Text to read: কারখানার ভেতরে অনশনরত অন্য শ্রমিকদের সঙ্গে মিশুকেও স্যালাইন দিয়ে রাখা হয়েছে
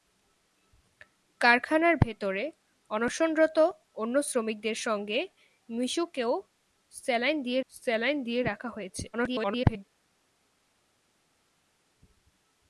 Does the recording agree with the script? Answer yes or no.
no